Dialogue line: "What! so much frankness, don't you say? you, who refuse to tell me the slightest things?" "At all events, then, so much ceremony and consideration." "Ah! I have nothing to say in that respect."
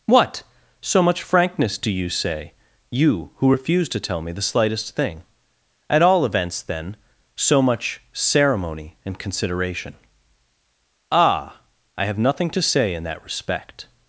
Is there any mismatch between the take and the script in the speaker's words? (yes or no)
yes